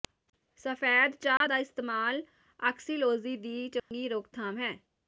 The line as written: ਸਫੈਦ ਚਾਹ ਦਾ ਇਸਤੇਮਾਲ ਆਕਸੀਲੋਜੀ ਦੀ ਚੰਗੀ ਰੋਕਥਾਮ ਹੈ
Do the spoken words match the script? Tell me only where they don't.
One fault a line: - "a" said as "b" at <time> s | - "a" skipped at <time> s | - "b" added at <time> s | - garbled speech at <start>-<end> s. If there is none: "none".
none